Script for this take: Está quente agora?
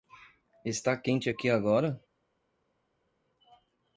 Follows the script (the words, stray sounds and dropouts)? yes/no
no